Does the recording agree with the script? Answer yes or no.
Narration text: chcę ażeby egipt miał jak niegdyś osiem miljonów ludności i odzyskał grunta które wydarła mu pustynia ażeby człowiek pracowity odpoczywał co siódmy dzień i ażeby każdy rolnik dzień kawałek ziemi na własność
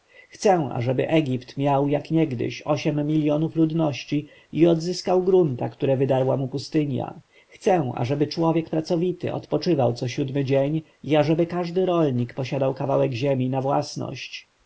no